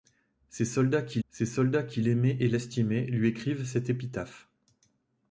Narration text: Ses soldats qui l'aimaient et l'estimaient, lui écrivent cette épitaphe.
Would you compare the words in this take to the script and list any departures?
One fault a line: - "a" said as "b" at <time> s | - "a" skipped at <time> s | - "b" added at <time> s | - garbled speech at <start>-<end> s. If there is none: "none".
- "ses soldats qui" added at 1.3 s